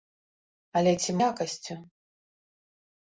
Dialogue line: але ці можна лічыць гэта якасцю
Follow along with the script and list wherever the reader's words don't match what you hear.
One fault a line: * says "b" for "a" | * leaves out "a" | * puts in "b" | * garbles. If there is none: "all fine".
* leaves out "можна лічыць гэта"